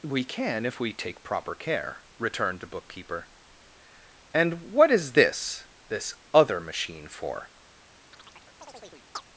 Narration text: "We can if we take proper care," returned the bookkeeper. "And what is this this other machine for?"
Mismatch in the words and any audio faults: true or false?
true